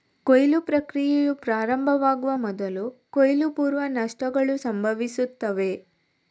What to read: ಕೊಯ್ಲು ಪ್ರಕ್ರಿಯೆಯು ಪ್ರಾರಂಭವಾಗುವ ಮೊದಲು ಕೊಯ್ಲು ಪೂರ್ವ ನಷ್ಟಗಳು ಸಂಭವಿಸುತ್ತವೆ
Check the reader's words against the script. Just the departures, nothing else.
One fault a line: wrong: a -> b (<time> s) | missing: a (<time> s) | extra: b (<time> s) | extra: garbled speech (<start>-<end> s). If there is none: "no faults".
no faults